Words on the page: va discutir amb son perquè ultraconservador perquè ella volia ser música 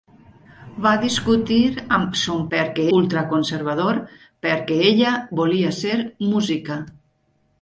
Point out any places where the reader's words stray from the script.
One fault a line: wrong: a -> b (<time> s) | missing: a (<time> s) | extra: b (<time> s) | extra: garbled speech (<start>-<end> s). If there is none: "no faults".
no faults